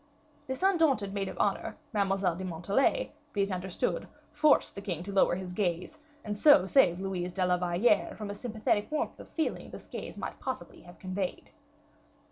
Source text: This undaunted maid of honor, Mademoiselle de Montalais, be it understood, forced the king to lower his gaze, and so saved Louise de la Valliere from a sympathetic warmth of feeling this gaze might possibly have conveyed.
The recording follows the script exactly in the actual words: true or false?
true